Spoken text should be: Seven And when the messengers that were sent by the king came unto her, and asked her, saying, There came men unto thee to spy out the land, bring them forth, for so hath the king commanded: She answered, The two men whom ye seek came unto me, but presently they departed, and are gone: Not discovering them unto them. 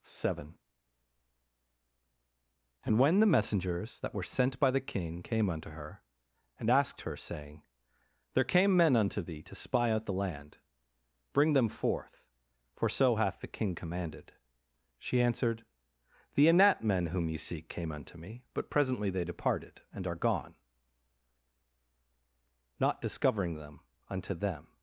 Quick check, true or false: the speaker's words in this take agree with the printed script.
false